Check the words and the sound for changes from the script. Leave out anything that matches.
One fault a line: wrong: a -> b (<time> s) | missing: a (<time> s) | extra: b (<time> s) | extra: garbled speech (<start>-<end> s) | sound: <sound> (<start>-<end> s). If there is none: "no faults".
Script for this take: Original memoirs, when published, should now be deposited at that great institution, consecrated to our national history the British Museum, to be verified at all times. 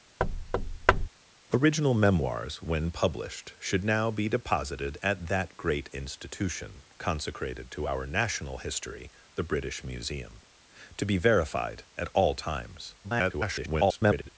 sound: thud (0.2-1.1 s)
extra: garbled speech (13.0-14.3 s)